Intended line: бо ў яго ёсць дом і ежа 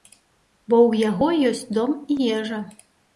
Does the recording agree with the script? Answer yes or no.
yes